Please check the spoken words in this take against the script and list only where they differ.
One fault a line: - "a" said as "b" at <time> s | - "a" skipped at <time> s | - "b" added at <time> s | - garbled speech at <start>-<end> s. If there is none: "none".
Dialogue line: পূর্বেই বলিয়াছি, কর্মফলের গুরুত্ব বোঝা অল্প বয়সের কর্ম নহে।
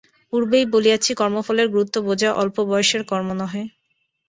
none